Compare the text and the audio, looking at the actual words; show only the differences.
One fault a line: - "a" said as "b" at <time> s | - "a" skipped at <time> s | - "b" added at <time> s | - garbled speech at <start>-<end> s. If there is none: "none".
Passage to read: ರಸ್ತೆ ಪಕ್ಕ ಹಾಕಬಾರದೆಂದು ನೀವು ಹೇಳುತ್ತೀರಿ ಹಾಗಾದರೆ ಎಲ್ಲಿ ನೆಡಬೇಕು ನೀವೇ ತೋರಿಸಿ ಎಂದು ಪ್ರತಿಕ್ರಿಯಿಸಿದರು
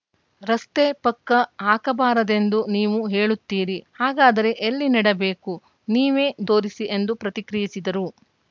none